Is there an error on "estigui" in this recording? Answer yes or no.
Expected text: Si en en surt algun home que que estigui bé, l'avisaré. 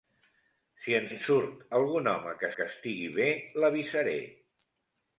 no